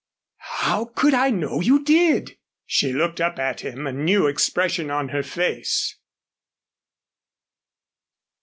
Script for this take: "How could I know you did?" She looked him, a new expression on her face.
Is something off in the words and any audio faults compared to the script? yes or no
yes